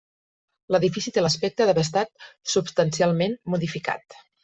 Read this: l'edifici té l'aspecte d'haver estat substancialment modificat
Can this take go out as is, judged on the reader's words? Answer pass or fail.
pass